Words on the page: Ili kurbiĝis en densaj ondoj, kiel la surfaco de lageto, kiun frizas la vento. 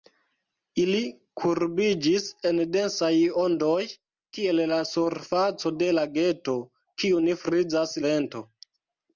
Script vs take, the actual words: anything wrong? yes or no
yes